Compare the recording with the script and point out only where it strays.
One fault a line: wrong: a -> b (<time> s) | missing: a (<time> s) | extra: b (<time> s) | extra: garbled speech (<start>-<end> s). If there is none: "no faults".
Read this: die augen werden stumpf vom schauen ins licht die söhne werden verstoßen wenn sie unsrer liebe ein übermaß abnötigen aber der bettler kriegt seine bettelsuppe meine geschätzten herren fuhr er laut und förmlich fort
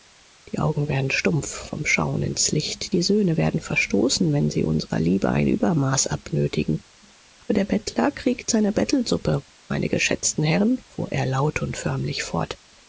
no faults